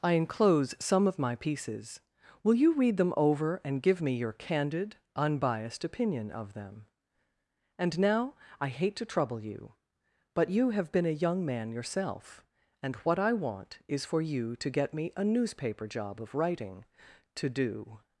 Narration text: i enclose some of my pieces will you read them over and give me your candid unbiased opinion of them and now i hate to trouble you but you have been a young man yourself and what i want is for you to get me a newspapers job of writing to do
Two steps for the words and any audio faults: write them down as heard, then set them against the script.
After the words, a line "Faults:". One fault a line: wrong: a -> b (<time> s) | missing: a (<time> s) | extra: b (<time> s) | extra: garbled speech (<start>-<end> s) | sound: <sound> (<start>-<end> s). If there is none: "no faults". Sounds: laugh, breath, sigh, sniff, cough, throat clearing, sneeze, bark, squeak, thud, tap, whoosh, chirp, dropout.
i enclose some of my pieces will you read them over and give me your candid unbiased opinion of them and now i hate to trouble you but you have been a young man yourself and what i want is for you to get me a newspaper job of writing to do
Faults:
wrong: newspapers -> newspaper (15.2 s)